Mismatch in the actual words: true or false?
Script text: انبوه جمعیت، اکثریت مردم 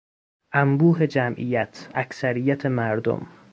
false